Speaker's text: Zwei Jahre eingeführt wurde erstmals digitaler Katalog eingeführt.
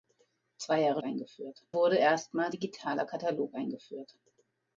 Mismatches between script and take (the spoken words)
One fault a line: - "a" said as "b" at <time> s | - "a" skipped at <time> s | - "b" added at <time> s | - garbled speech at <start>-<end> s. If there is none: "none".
none